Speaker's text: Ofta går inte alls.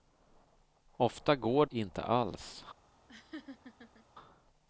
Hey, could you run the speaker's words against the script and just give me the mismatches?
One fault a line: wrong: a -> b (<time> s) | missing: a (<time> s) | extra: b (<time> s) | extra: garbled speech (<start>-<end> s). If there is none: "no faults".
no faults